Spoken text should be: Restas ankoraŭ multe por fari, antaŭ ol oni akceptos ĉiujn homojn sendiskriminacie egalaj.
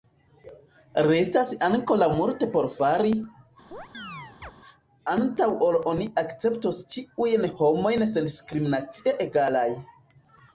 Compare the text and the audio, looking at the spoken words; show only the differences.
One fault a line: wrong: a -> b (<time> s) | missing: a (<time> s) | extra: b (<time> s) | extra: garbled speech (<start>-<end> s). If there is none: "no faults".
no faults